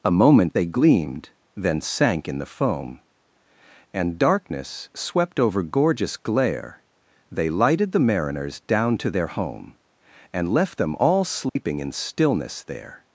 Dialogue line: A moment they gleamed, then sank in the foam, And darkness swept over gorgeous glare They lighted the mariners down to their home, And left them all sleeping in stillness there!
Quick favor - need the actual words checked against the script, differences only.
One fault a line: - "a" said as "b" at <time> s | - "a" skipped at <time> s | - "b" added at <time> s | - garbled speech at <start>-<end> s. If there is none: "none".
none